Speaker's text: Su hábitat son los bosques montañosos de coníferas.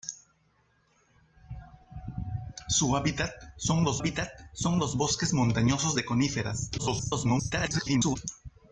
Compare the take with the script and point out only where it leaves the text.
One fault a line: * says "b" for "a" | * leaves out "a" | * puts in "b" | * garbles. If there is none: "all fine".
* puts in "hábitat son los"
* garbles